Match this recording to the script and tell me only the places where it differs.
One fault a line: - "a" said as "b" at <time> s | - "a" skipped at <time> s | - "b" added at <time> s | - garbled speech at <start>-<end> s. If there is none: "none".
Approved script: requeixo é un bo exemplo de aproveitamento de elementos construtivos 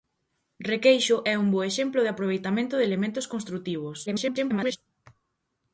- garbled speech at 4.1-4.8 s